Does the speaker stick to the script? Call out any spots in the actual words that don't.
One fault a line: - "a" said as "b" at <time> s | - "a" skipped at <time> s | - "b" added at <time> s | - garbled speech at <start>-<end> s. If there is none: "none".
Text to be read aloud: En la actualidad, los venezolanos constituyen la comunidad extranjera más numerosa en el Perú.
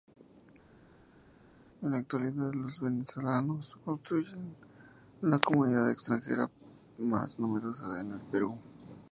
none